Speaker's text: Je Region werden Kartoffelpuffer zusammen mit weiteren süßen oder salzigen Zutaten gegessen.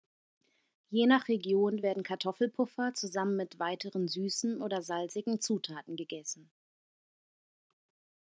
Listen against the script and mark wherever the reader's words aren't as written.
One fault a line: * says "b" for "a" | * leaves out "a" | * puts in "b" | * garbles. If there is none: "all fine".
* puts in "nach"